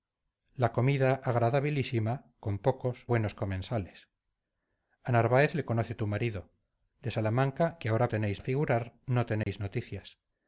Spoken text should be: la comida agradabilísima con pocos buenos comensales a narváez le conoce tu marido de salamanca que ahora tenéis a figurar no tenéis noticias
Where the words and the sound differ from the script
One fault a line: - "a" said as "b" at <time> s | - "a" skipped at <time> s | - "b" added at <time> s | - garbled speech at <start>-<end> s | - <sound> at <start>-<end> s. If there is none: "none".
- dropout at 9.4-9.5 s